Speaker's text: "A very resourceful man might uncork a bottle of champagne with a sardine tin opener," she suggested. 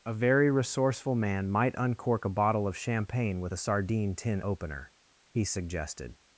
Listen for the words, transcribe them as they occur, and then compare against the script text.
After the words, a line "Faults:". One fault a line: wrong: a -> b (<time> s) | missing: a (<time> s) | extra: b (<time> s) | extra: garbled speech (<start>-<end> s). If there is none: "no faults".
"A very resourceful man might uncork a bottle of champagne with a sardine tin opener," he suggested.
Faults:
wrong: she -> he (5.3 s)